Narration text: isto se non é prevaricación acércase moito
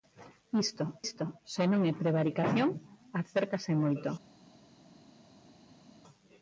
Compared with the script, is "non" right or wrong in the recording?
right